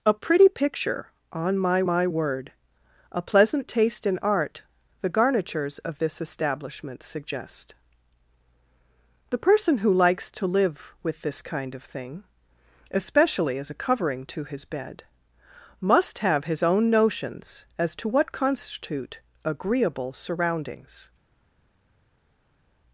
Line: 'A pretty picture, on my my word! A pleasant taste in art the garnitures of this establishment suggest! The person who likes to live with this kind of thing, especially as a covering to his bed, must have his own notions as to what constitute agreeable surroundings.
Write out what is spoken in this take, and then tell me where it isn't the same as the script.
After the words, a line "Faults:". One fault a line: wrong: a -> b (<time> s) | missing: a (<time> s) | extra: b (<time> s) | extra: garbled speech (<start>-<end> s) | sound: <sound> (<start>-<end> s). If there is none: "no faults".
'A pretty picture, on my my word! A pleasant taste in art the garnitures of this establishment suggest! The person who likes to live with this kind of thing, especially as a covering to his bed, must have his own notions as to what constitute agreeable surroundings.
Faults:
no faults